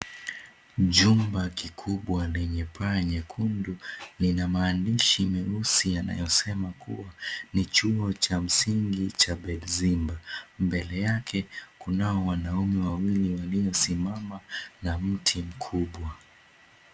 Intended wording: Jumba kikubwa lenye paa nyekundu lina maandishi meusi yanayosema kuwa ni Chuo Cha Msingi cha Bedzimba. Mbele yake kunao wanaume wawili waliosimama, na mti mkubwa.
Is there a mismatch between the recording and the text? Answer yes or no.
no